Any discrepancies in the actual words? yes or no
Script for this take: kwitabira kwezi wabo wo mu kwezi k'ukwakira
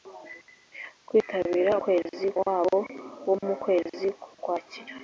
no